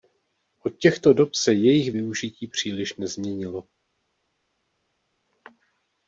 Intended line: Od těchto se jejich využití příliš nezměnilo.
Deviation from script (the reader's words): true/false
true